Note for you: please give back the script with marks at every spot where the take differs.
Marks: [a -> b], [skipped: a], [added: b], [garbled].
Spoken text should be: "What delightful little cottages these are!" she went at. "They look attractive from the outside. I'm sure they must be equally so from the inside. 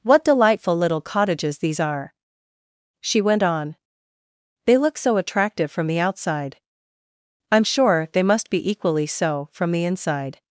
"What delightful little cottages these are!" she went [at. -> on] "They look [added: so] attractive from the outside. I'm sure they must be equally so from the inside.